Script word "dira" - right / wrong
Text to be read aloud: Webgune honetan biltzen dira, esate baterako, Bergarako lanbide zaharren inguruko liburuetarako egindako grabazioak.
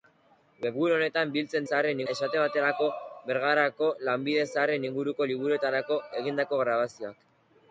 wrong